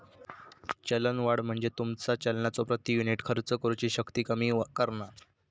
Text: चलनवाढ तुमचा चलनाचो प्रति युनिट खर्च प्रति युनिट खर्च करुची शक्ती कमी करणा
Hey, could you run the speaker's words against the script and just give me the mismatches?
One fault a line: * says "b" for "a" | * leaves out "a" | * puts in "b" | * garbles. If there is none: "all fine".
* puts in "म्हणजे"
* leaves out "प्रति युनिट खर्च"